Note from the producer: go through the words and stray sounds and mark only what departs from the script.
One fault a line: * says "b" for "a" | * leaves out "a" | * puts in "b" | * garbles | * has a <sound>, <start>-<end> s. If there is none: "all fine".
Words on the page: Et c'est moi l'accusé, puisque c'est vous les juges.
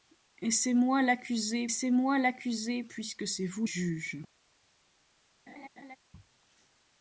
* puts in "c'est moi l'accusé"
* leaves out "les"
* has a laugh, 5.5-6.0 s